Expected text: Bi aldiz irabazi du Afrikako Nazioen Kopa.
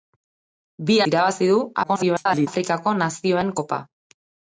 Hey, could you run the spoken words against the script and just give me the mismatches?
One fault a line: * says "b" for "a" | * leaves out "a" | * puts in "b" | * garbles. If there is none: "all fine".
* leaves out "aldiz"
* garbles